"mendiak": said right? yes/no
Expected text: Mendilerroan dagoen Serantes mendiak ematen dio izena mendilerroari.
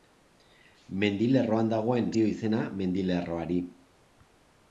no